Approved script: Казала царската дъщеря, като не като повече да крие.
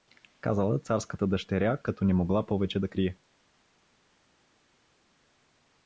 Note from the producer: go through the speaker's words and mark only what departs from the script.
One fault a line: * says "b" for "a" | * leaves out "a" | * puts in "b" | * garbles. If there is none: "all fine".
* says "могла" for "като"